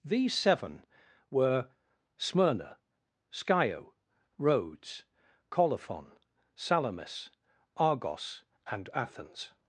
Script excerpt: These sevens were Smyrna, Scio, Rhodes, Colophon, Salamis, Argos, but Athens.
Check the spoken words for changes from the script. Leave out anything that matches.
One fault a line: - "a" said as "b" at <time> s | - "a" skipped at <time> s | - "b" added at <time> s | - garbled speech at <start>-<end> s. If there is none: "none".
- "sevens" said as "seven" at 0.3 s
- "but" said as "and" at 8.7 s